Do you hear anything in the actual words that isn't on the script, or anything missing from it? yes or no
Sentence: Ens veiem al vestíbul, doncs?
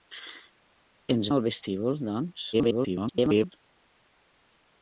yes